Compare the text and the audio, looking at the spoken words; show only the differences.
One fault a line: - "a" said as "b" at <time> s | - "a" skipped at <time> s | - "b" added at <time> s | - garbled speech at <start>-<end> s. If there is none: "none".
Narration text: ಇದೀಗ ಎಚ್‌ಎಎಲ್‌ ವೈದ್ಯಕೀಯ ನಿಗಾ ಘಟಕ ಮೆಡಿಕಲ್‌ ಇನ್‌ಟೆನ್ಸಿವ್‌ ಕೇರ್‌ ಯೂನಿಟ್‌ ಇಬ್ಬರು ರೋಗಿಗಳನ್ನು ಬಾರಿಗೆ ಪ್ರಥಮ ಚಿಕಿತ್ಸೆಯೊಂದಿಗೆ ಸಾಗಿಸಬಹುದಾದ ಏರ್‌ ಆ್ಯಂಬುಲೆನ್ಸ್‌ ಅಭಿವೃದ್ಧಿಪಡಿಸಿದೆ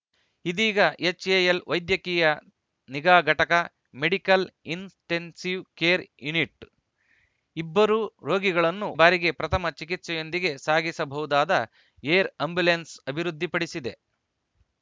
none